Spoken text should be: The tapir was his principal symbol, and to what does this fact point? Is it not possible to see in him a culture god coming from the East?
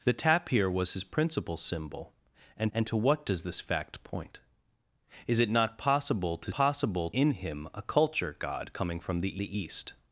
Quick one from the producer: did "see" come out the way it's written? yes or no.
no